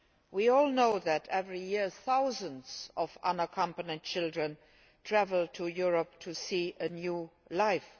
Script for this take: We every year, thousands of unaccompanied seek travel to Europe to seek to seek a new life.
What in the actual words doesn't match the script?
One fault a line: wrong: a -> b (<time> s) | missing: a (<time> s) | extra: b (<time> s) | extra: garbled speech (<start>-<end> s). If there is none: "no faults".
extra: all know that (0.5 s)
wrong: seek -> children (4.0 s)
missing: to seek (6.8 s)